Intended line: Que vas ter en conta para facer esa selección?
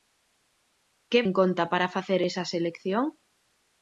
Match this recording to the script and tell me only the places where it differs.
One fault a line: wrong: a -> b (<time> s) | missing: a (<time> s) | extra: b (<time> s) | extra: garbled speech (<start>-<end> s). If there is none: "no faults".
missing: vas ter (1.2 s)